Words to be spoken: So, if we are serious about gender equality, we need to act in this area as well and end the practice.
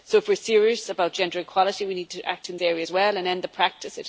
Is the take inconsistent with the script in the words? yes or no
yes